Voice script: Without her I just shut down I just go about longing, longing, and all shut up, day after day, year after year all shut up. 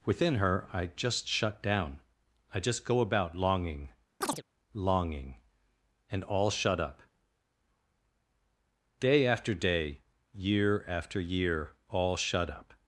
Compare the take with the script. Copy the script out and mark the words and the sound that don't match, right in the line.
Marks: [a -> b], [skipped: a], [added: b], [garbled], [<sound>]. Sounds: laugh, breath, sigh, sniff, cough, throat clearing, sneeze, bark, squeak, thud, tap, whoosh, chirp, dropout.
[Without -> Within] her I just shut down I just go about longing, [chirp] longing, and all shut up, day after day, year after year all shut up.